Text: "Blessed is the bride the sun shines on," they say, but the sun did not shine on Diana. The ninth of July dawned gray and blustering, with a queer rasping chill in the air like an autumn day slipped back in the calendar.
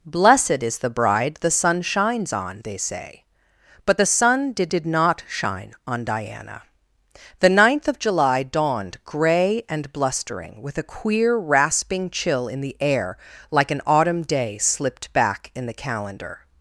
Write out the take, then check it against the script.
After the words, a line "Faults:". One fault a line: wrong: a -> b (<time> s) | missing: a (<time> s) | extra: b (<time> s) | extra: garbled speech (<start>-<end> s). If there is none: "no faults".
"Blessed is the bride the sun shines on," they say, but the sun did did not shine on Diana. The ninth of July dawned gray and blustering, with a queer rasping chill in the air like an autumn day slipped back in the calendar.
Faults:
extra: did (4.7 s)